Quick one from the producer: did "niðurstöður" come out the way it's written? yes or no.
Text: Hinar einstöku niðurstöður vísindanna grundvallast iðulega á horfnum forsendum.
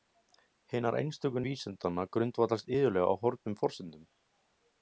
no